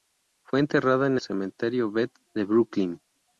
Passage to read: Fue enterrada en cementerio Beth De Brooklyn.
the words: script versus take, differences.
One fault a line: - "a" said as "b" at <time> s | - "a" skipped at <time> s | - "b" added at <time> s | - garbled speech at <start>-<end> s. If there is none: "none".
none